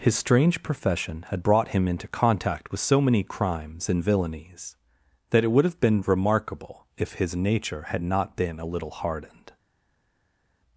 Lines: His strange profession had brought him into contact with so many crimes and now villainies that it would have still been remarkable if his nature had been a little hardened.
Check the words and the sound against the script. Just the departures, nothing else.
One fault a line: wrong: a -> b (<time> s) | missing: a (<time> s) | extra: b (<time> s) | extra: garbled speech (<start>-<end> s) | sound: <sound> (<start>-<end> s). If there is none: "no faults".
missing: now (4.0 s)
missing: still (5.8 s)
extra: not (8.0 s)